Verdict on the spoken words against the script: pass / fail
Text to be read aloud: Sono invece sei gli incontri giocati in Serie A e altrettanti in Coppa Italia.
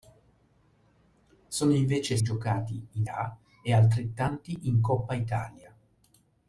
fail